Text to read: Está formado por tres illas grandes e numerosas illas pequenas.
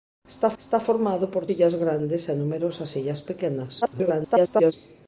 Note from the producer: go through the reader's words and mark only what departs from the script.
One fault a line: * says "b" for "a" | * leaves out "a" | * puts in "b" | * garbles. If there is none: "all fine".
* puts in "está"
* leaves out "tres"
* garbles